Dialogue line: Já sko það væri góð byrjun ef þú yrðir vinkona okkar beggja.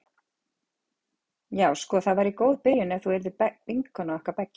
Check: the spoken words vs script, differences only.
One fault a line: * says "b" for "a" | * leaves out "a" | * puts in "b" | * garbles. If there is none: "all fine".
all fine